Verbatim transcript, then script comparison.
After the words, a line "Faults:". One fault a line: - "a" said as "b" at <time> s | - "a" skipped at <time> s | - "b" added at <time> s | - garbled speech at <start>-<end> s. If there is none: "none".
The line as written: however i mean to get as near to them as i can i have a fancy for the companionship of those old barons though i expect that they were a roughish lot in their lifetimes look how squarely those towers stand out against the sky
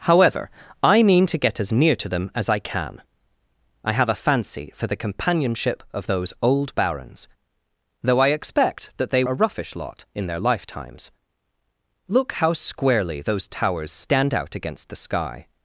however i mean to get as near to them as i can i have a fancy for the companionship of those old barons though i expect that they a roughish lot in their lifetimes look how squarely those towers stand out against the sky
Faults:
- "were" skipped at 9.2 s